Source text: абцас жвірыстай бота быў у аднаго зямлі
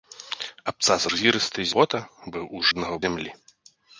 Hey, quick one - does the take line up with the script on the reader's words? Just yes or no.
yes